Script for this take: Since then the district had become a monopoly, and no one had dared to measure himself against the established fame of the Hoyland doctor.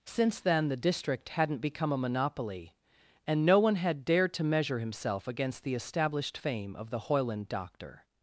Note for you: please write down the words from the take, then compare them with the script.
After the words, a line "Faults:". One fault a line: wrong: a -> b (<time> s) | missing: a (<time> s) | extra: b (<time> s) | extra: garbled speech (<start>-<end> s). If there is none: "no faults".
Since then the district hadn't become a monopoly, and no one had dared to measure himself against the established fame of the Hoyland doctor.
Faults:
wrong: had -> hadn't (1.3 s)